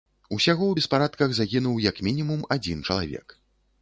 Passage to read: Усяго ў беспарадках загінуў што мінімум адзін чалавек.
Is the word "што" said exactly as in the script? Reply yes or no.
no